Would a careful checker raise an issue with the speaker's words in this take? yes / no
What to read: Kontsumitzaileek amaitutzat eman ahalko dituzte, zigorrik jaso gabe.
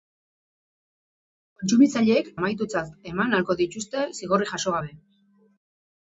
no